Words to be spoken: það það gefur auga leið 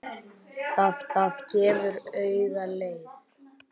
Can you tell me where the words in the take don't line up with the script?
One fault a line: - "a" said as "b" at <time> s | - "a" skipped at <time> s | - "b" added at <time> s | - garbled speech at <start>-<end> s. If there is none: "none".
none